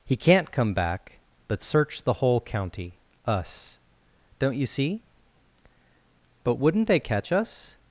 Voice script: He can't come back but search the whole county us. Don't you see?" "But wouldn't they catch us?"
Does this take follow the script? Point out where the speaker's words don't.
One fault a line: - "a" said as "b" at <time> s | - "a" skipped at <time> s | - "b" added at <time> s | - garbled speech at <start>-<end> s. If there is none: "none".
none